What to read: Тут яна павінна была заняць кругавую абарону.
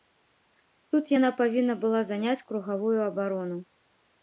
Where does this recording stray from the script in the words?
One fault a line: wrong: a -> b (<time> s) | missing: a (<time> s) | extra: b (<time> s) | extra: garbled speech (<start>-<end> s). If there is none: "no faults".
no faults